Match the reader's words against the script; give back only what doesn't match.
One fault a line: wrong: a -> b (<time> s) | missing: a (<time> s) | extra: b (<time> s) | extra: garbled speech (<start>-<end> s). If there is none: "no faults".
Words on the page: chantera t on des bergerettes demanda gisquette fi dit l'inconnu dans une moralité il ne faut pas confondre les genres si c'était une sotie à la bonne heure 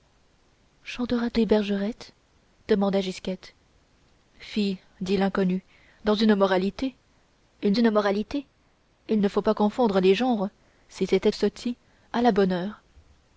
missing: on (1.4 s)
extra: une moralité il (7.7 s)
missing: une (11.3 s)